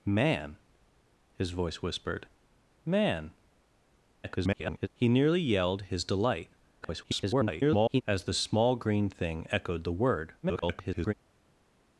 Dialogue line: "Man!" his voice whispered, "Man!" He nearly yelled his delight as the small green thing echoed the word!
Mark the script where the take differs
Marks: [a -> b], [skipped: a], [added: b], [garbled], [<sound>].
"Man!" his voice whispered, "Man!" [garbled] He nearly yelled his delight [garbled] as the small green thing echoed the word! [garbled]